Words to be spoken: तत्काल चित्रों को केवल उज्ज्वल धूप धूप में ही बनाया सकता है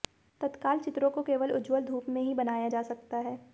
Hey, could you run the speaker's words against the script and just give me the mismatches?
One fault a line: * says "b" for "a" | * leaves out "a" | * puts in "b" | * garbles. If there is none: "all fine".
* leaves out "धूप"
* puts in "जा"